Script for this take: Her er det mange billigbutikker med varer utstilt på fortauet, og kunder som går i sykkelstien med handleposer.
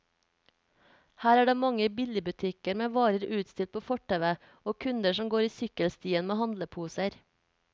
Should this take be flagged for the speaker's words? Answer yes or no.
no